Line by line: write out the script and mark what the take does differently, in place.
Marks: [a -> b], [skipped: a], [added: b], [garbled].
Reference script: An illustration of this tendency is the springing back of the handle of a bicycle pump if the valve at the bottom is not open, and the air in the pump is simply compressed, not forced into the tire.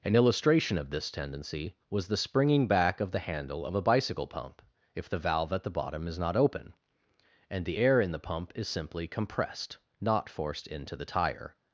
An illustration of this tendency [is -> was] the springing back of the handle of a bicycle pump if the valve at the bottom is not open, and the air in the pump is simply compressed, not forced into the tire.